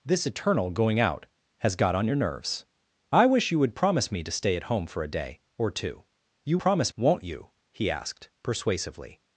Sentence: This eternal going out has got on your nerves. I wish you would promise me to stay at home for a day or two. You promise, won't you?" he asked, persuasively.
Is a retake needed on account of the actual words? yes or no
no